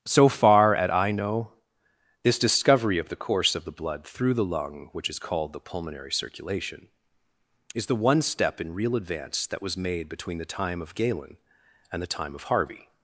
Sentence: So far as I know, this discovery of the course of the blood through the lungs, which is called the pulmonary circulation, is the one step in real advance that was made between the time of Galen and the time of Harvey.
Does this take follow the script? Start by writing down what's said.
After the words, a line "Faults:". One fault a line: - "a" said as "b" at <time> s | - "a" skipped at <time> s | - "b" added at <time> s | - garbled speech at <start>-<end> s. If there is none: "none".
So far at I know, this discovery of the course of the blood through the lung, which is called the pulmonary circulation, is the one step in real advance that was made between the time of Galen and the time of Harvey.
Faults:
- "as" said as "at" at 0.8 s
- "lungs" said as "lung" at 4.5 s